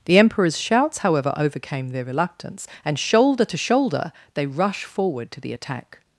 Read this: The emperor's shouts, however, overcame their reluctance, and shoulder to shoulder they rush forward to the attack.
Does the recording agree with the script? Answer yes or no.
yes